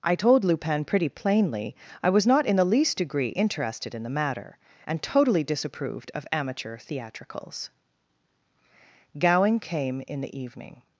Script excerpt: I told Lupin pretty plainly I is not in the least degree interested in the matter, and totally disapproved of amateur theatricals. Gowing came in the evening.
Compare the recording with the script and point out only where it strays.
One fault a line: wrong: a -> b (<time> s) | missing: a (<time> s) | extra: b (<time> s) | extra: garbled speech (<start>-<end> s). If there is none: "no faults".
wrong: is -> was (2.1 s)